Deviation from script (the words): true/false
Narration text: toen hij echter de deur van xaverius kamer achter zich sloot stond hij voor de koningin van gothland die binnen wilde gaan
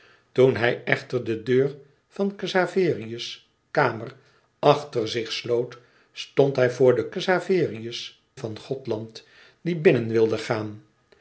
true